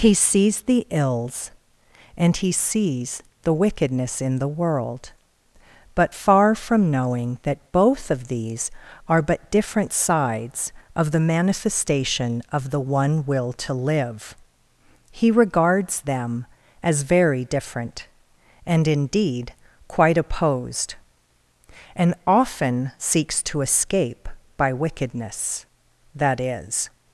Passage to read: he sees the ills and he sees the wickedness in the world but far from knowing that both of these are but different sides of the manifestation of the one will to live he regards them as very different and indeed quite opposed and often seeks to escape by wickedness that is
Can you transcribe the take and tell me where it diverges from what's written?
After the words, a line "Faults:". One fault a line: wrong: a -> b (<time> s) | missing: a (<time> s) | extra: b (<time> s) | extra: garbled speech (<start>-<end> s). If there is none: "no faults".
he sees the ills and he sees the wickedness in the world but far from knowing that both of these are but different sides of the manifestation of the one will to live he regards them as very different and indeed quite opposed and often seeks to escape by wickedness that is
Faults:
no faults